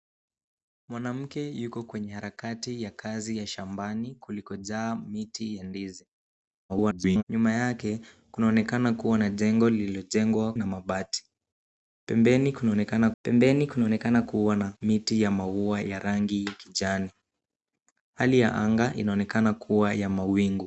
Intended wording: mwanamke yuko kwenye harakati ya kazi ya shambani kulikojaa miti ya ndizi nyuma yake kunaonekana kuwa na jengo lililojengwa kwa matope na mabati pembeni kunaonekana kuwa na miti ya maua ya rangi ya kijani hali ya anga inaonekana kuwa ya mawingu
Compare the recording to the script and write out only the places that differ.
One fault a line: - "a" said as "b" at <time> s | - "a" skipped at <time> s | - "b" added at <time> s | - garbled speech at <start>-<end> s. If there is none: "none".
- garbled speech at 6.7-7.2 s
- "kwa matope na mabati" said as "na mabati pembeni kunaonekana" at 10.5 s